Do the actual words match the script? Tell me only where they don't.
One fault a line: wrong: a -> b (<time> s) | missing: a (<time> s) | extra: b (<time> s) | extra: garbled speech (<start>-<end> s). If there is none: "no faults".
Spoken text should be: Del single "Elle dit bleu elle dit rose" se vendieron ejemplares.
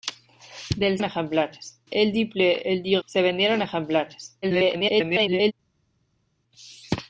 wrong: single -> ejemplares (1.0 s)
missing: rose (3.0 s)
extra: garbled speech (4.4-5.5 s)